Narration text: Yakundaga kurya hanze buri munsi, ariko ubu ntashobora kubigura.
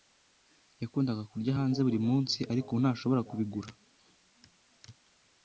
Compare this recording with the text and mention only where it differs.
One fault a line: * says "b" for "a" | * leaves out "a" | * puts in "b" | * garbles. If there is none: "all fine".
all fine